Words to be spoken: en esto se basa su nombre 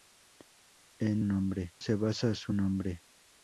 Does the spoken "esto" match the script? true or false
false